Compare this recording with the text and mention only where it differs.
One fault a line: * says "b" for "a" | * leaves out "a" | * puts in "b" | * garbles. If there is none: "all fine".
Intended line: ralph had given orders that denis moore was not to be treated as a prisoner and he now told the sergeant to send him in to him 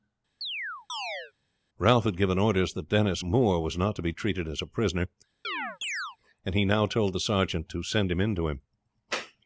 all fine